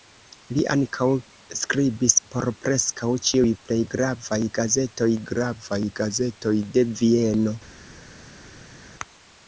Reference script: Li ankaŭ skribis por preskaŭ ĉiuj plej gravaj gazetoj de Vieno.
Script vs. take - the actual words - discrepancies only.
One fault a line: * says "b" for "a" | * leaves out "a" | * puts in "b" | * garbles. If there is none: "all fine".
* puts in "gravaj gazetoj"